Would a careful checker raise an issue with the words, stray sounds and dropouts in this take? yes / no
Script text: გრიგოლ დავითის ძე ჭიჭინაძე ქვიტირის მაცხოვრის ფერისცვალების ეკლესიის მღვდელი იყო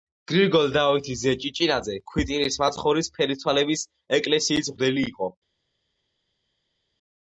no